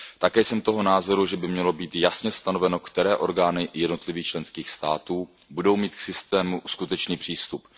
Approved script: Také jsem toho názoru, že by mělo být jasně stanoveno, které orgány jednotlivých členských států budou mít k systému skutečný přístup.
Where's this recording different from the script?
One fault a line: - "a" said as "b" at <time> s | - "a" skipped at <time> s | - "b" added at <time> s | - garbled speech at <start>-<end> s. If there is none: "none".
none